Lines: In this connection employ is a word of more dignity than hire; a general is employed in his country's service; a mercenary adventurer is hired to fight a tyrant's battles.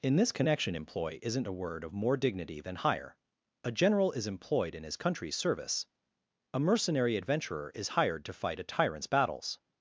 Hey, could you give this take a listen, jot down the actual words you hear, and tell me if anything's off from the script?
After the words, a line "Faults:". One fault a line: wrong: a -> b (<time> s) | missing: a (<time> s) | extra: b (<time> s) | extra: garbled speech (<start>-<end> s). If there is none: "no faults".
In this connection employ isn't a word of more dignity than hire; a general is employed in his country's service; a mercenary adventurer is hired to fight a tyrant's battles.
Faults:
wrong: is -> isn't (1.2 s)